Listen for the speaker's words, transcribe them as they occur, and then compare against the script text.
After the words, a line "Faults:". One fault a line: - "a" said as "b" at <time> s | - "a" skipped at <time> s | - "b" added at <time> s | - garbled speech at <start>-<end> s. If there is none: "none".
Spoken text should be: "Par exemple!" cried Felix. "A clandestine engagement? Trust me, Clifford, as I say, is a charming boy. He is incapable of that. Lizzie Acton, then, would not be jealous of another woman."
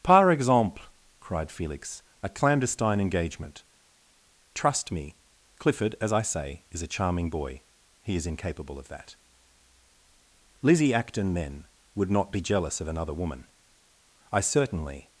"Par exemple!" cried Felix. "A clandestine engagement? Trust me, Clifford, as I say, is a charming boy. He is incapable of that. Lizzie Acton, then, would not be jealous of another woman." "I certainly
Faults:
- "I certainly" added at 14.3 s